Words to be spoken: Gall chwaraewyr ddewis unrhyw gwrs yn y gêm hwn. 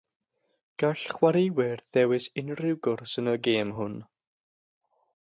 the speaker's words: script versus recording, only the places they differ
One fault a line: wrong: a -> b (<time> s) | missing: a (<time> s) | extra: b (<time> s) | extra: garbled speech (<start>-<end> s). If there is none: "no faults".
no faults